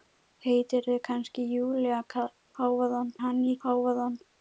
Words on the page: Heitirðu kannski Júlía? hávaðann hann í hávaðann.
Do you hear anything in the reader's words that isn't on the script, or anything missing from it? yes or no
no